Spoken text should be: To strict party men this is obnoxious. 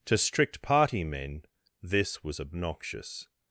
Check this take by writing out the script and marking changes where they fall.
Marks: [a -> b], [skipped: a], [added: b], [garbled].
To strict party men this [is -> was] obnoxious.